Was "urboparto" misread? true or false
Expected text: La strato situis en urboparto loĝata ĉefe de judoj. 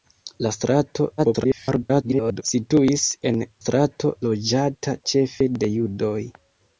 true